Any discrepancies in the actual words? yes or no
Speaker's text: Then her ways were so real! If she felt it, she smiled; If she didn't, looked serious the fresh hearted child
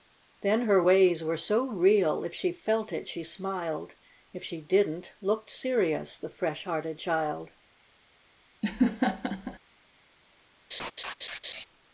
no